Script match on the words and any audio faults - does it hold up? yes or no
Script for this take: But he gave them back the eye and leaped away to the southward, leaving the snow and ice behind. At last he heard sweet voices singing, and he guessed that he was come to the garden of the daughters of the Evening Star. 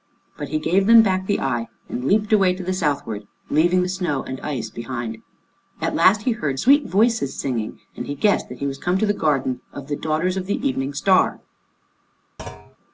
no